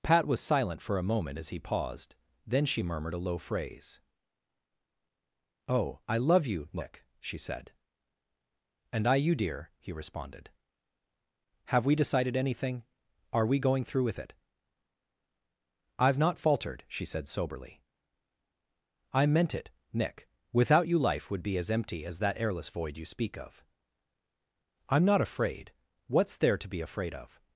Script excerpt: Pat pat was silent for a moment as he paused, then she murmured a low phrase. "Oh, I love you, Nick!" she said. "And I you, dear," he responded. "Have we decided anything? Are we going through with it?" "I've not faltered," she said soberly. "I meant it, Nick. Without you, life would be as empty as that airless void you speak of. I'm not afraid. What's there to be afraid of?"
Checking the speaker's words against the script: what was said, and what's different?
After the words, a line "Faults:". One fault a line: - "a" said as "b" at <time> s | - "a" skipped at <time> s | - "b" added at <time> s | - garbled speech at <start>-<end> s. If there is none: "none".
Pat was silent for a moment as he paused, then she murmured a low phrase. "Oh, I love you, Nick!" she said. "And I you, dear," he responded. "Have we decided anything? Are we going through with it?" "I've not faltered," she said soberly. "I meant it, Nick. Without you, life would be as empty as that airless void you speak of. I'm not afraid. What's there to be afraid of?"
Faults:
- "pat" skipped at 0.2 s